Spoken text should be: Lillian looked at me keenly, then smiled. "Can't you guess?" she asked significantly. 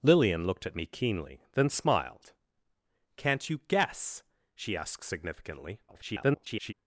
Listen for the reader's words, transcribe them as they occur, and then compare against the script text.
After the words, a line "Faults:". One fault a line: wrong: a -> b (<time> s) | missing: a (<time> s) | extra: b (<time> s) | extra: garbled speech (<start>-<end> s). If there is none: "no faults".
Lillian looked at me keenly, then smiled. "Can't you guess?" she asked significantly. [garbled]
Faults:
extra: garbled speech (5.9-6.7 s)